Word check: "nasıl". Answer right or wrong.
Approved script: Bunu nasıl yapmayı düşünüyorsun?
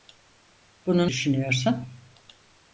wrong